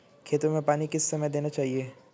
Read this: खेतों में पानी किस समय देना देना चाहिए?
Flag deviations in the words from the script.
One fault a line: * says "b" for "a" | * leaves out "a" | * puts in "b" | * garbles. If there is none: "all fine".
* leaves out "देना"